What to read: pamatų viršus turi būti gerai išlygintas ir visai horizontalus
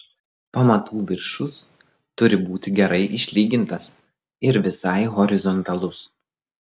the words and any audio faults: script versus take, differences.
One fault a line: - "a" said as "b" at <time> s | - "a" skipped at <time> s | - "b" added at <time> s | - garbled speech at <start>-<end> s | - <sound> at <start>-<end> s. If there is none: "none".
none